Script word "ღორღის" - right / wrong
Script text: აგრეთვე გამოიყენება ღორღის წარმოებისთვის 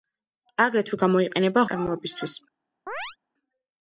wrong